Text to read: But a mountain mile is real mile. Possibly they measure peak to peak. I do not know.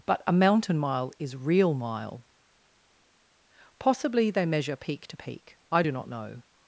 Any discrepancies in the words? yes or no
no